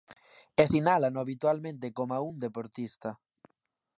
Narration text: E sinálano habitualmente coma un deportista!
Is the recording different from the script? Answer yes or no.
no